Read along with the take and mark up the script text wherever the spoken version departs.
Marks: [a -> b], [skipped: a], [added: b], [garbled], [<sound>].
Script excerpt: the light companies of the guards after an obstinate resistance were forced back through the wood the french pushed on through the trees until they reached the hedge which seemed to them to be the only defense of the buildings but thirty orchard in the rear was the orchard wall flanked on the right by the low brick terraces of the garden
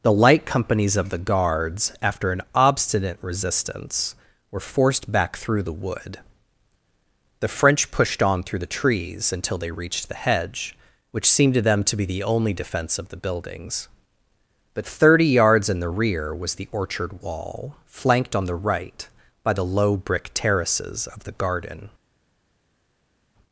the light companies of the guards after an obstinate resistance were forced back through the wood the french pushed on through the trees until they reached the hedge which seemed to them to be the only defense of the buildings but thirty [orchard -> yards] in the rear was the orchard wall flanked on the right by the low brick terraces of the garden